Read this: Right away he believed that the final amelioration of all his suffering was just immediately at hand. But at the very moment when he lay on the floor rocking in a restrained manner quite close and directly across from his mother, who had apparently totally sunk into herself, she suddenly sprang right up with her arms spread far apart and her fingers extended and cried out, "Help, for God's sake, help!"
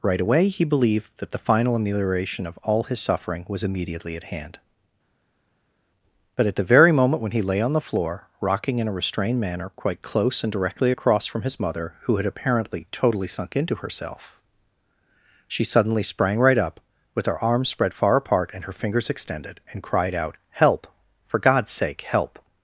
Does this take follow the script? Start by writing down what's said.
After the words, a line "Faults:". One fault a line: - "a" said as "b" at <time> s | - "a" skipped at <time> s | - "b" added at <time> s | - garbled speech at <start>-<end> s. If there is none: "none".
Right away he believed that the final amelioration of all his suffering was immediately at hand. But at the very moment when he lay on the floor rocking in a restrained manner quite close and directly across from his mother, who had apparently totally sunk into herself, she suddenly sprang right up with her arms spread far apart and her fingers extended and cried out, "Help, for God's sake, help!"
Faults:
- "just" skipped at 3.6 s